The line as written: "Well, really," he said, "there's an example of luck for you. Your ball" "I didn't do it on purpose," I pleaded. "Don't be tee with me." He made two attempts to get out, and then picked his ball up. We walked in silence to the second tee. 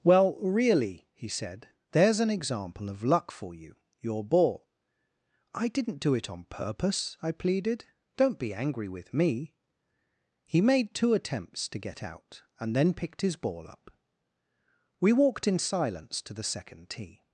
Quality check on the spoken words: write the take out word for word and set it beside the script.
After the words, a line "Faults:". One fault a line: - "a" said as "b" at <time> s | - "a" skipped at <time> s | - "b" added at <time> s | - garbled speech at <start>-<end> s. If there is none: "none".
"Well, really," he said, "there's an example of luck for you. Your ball" "I didn't do it on purpose," I pleaded. "Don't be angry with me." He made two attempts to get out, and then picked his ball up. We walked in silence to the second tee.
Faults:
- "tee" said as "angry" at 8.5 s